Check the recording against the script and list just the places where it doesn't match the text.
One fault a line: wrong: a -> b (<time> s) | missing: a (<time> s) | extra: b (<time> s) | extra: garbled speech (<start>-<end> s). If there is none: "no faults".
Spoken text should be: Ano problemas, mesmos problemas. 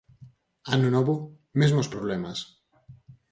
wrong: problemas -> novo (0.9 s)